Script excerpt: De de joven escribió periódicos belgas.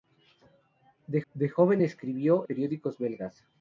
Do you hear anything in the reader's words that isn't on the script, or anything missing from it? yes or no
no